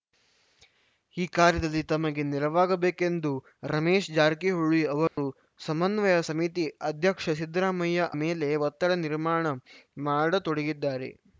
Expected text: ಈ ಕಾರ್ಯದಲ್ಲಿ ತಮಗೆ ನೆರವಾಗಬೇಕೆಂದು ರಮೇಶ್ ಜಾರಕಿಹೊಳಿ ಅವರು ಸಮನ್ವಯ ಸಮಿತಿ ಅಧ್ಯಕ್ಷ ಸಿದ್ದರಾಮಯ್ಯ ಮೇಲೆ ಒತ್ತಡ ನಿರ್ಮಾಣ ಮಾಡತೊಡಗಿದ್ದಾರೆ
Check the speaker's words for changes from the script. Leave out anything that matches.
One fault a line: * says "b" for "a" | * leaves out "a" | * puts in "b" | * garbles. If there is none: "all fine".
all fine